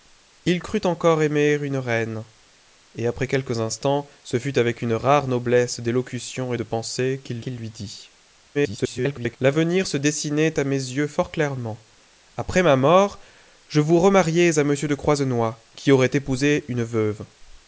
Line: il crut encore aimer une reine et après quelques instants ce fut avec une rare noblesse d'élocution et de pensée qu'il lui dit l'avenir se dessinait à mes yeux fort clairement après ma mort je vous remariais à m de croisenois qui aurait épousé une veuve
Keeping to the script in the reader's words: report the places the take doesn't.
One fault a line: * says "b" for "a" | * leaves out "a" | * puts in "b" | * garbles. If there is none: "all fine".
* puts in "qu'il"
* garbles